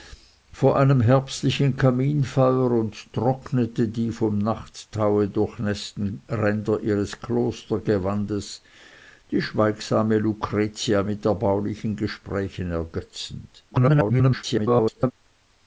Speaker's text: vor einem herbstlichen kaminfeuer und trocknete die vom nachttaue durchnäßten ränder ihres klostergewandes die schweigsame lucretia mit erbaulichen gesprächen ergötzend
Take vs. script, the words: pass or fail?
fail